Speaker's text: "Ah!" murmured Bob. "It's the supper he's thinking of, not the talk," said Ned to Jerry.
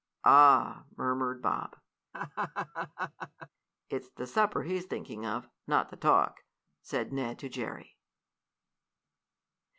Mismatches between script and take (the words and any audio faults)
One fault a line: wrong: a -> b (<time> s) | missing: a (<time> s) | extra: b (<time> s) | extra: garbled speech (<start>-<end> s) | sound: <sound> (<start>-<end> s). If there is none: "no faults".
sound: laugh (2.1-3.5 s)